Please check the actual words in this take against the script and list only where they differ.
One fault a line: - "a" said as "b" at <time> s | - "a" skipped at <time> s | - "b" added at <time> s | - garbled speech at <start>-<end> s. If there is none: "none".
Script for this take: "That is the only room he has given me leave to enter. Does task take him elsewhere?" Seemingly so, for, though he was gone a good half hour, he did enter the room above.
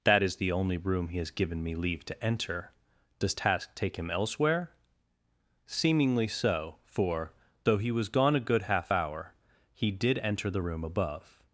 none